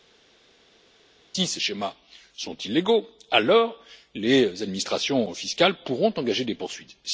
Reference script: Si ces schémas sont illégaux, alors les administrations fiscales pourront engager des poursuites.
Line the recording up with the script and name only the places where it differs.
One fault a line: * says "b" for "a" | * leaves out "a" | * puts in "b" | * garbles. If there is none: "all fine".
all fine